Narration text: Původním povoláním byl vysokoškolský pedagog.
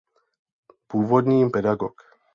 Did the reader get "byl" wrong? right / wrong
wrong